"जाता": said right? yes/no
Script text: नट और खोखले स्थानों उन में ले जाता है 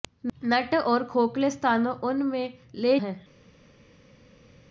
no